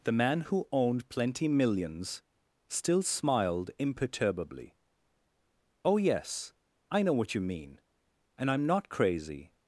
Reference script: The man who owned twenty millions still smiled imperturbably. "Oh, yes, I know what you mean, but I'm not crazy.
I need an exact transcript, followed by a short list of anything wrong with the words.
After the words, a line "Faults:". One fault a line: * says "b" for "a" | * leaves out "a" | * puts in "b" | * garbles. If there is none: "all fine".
The man who owned plenty millions still smiled imperturbably. "Oh, yes, I know what you mean, and I'm not crazy.
Faults:
* says "plenty" for "twenty"
* says "and" for "but"